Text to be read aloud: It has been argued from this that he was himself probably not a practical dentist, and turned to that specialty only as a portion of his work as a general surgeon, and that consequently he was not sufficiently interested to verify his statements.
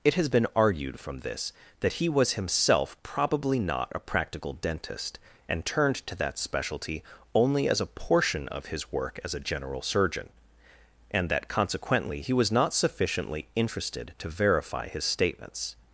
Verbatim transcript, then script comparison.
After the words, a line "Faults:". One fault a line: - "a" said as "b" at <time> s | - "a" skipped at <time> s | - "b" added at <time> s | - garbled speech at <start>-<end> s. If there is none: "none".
It has been argued from this that he was himself probably not a practical dentist, and turned to that specialty only as a portion of his work as a general surgeon, and that consequently he was not sufficiently interested to verify his statements.
Faults:
none